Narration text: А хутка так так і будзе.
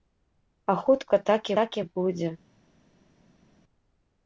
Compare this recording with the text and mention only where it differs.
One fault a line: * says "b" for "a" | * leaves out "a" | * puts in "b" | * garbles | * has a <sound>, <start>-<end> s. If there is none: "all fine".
all fine